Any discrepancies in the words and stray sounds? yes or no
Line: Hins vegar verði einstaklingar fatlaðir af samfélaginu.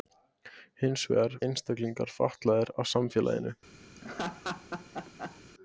yes